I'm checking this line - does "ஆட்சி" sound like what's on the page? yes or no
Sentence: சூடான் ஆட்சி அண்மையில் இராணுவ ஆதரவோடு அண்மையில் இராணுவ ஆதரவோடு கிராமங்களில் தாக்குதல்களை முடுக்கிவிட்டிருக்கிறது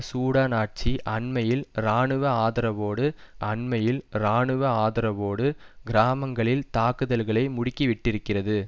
yes